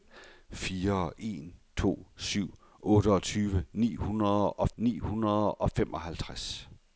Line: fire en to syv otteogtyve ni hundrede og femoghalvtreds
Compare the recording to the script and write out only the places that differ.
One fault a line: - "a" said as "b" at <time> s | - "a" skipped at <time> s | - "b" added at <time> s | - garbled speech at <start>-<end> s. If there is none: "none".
- "ni hundrede og" added at 4.8 s